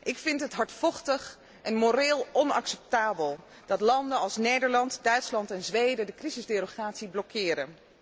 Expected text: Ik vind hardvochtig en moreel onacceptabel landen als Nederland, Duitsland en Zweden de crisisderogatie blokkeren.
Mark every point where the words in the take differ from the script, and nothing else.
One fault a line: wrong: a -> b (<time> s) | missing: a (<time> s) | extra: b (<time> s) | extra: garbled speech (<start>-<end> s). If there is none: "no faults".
extra: het (0.4 s)
extra: dat (3.6 s)